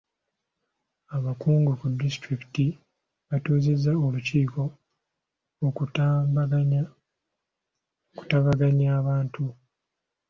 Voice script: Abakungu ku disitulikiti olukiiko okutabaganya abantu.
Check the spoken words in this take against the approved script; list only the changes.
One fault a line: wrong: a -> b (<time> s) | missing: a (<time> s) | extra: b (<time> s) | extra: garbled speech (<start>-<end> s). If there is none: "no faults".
extra: batuuzizza (3.3 s)